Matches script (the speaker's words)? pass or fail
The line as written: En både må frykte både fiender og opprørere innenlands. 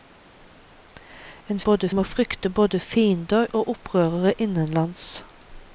pass